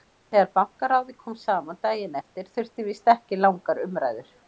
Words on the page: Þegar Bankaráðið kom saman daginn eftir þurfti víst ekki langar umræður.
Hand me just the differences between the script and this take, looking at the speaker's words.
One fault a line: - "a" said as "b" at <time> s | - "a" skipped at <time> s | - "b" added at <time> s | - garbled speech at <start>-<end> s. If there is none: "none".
none